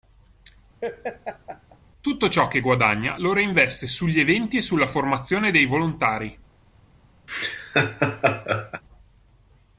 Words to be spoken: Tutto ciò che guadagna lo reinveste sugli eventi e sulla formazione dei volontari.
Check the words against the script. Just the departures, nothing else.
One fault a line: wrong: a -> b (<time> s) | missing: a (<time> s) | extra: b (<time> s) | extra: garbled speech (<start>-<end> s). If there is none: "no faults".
no faults